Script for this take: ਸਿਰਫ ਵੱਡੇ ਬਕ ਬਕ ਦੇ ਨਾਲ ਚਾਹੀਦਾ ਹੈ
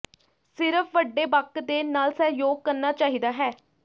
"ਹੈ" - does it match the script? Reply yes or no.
yes